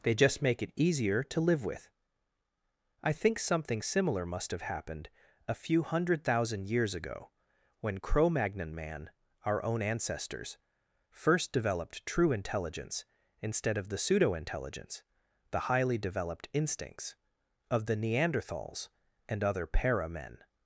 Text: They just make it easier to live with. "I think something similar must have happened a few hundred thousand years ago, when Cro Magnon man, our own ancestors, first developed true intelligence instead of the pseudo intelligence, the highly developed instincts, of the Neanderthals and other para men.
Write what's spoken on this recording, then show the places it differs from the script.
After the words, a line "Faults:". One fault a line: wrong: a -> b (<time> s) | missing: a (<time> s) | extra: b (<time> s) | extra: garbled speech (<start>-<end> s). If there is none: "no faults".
They just make it easier to live with. "I think something similar must have happened a few hundred thousand years ago, when Cro Magnon man, our own ancestors, first developed true intelligence instead of the pseudo intelligence, the highly developed instincts, of the Neanderthals and other para men.
Faults:
no faults